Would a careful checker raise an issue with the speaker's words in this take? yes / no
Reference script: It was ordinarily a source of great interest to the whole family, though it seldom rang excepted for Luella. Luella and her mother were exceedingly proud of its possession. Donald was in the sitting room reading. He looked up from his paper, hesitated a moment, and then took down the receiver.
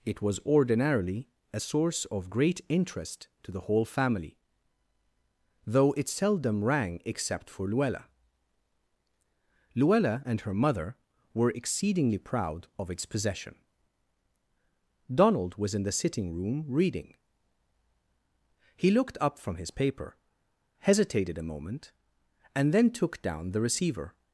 yes